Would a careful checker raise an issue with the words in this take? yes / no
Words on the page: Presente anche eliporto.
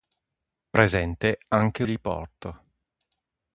no